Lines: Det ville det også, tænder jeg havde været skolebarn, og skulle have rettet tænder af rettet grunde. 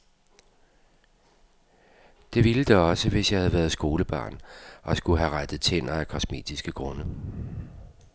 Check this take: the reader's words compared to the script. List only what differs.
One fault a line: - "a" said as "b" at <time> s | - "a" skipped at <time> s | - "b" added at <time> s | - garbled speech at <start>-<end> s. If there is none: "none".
- "tænder" said as "hvis" at 3.1 s
- "rettet" said as "kosmetiske" at 6.1 s